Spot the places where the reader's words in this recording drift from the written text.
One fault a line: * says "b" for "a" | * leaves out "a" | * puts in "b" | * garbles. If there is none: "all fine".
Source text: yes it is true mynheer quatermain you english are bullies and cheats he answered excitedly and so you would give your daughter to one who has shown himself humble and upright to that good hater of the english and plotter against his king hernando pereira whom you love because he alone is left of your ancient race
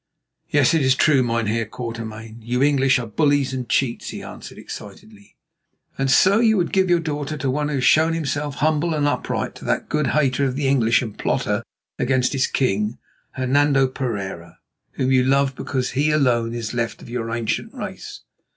all fine